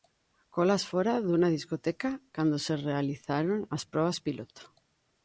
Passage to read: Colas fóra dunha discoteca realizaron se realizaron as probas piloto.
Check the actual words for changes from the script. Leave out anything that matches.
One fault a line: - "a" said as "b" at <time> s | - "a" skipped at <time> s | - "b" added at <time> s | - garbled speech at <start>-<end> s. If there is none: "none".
- "realizaron" said as "cando" at 2.4 s